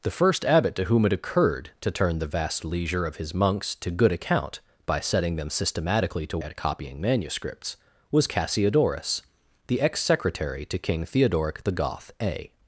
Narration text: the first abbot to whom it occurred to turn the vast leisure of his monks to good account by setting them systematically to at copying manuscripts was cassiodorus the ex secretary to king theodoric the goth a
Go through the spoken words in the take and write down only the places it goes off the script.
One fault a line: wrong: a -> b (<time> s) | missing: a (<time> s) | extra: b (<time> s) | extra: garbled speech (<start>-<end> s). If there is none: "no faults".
no faults